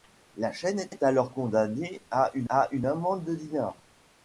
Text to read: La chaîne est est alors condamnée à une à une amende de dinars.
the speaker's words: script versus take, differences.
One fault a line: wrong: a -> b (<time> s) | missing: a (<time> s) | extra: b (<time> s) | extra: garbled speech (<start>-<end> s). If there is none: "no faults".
no faults